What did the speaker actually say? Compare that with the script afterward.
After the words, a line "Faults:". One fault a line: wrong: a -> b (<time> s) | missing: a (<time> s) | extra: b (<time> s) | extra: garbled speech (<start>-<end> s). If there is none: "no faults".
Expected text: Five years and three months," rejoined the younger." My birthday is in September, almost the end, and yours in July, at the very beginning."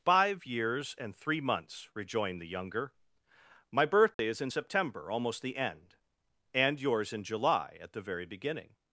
Five years and three months," rejoined the younger." My birthday is in September, almost the end, and yours in July, at the very beginning."
Faults:
no faults